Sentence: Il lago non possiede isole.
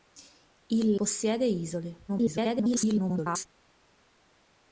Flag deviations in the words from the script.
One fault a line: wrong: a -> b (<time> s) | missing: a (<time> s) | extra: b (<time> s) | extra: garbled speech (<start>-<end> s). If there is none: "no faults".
missing: lago non (0.9 s)
extra: garbled speech (2.1-3.5 s)